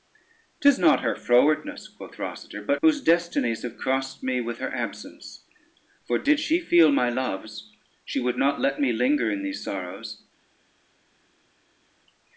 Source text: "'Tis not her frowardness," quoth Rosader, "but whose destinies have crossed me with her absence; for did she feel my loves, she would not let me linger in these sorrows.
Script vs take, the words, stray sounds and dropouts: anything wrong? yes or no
no